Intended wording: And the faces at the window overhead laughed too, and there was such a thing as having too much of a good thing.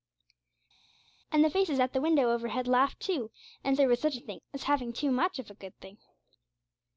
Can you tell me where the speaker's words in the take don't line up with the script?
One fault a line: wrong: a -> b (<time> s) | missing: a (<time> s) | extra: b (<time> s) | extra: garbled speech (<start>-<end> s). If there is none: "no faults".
no faults